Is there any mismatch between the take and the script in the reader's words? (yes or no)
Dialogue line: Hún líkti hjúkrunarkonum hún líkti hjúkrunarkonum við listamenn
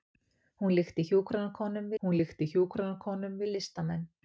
no